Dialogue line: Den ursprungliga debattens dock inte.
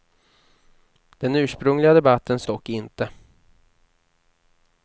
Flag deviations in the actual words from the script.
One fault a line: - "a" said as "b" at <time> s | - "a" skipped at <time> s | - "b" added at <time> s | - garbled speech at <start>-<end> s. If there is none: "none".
none